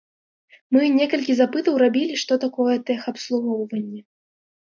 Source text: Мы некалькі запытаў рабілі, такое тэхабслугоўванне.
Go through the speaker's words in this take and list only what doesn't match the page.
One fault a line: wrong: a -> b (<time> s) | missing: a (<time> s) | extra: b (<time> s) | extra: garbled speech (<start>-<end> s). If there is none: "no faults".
extra: што (2.2 s)